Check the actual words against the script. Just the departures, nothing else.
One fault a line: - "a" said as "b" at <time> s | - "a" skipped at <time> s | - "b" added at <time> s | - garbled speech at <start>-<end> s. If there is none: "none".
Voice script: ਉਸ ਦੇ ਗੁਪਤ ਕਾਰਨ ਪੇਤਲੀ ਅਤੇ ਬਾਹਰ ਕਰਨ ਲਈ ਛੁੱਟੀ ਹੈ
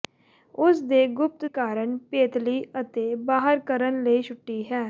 none